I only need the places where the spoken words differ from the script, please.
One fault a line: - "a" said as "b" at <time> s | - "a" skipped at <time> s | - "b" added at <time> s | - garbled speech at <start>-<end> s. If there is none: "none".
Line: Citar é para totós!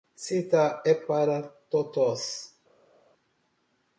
none